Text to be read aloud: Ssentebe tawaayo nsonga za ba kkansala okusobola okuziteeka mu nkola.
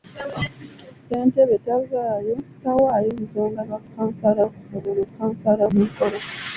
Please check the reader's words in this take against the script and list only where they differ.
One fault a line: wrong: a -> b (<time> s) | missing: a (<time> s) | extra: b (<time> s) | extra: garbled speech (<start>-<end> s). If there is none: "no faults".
missing: za (3.6 s)
wrong: okuziteeka -> kkansala (5.1 s)